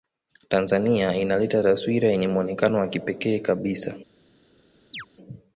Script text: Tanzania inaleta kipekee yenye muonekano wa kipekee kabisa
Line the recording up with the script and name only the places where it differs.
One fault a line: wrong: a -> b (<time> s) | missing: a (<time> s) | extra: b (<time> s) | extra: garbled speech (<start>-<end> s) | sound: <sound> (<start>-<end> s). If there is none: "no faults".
wrong: kipekee -> taswira (1.6 s)
sound: chirp (4.9-5.1 s)